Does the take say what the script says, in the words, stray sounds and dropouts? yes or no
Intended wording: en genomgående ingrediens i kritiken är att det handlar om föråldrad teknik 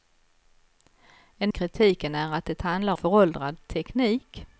no